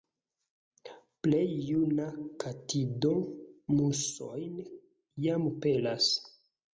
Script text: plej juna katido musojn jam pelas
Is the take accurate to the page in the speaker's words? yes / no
yes